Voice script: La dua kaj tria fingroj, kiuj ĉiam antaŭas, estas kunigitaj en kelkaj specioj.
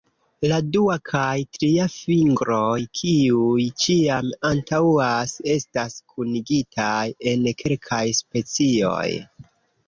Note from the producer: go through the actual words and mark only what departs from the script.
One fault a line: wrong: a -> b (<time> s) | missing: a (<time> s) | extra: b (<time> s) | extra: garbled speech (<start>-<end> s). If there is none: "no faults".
no faults